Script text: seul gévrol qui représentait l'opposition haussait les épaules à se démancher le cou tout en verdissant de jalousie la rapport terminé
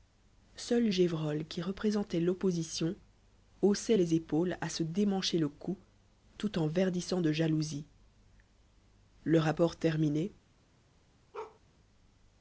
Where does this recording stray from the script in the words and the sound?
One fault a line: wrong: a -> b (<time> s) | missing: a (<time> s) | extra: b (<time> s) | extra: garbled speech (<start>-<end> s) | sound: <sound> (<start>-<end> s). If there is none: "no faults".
wrong: la -> le (9.2 s)
sound: bark (11.3-11.6 s)